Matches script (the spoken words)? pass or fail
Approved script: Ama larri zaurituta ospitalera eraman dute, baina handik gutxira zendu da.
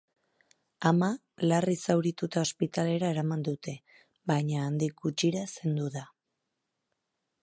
pass